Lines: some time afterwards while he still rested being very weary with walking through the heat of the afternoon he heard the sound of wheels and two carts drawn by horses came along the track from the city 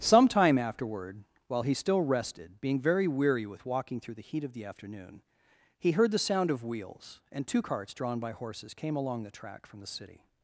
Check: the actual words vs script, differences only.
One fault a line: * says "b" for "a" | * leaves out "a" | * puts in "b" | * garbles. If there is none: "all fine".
* says "afterward" for "afterwards"